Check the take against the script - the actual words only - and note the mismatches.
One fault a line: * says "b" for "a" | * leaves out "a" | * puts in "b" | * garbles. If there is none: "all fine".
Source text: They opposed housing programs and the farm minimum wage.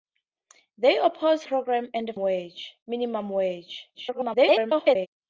* leaves out "housing"
* says "wage" for "farm"
* garbles